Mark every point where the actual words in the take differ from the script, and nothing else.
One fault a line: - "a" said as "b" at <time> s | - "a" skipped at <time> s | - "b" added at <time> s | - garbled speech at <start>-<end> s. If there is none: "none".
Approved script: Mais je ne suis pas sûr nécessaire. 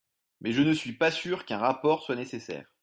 - "qu'un rapport soit" added at 1.5 s